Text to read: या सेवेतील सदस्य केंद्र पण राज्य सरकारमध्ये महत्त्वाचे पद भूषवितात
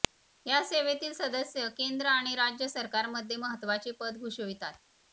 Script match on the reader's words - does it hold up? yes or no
no